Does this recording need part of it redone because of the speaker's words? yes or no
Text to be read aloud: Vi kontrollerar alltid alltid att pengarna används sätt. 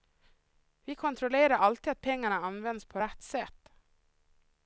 yes